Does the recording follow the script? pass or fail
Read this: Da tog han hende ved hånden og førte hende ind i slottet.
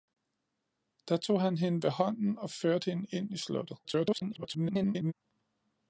fail